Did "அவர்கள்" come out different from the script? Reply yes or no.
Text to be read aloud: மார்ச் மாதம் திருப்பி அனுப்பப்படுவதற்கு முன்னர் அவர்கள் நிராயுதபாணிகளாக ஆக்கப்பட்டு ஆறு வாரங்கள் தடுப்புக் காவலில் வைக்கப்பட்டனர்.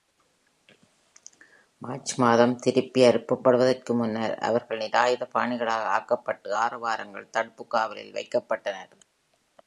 no